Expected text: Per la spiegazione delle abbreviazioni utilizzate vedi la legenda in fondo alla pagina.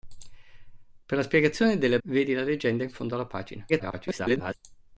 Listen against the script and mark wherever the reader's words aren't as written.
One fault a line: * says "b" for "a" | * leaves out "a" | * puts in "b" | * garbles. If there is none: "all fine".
* leaves out "abbreviazioni utilizzate"
* garbles